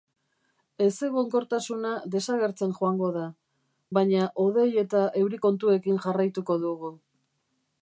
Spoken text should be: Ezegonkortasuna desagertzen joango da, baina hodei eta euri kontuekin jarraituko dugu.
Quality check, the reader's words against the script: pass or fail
pass